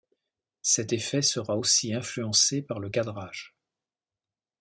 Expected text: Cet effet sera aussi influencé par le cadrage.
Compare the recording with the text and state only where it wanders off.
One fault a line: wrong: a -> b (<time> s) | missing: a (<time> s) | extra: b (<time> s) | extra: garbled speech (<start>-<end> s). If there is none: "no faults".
no faults